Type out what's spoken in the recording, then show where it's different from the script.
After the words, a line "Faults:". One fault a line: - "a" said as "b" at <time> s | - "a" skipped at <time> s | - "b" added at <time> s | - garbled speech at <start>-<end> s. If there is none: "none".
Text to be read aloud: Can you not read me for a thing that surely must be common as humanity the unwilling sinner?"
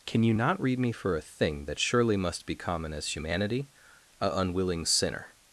Can you not read me for a thing that surely must be common as humanity a unwilling sinner?"
Faults:
- "the" said as "a" at 4.2 s